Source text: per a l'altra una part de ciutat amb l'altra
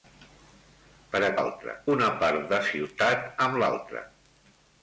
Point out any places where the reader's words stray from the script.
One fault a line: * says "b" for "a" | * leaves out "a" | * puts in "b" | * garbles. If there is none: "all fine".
all fine